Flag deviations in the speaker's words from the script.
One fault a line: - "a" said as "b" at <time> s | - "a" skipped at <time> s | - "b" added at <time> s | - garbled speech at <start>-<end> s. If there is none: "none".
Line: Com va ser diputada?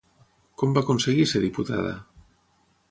- "aconseguir" added at 0.8 s